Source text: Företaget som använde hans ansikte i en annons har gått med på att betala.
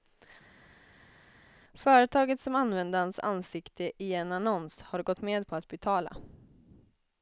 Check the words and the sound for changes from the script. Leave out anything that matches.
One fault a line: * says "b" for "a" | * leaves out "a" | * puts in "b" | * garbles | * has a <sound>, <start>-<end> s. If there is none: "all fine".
all fine